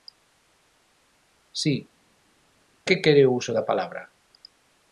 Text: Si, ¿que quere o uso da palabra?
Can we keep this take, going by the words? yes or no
yes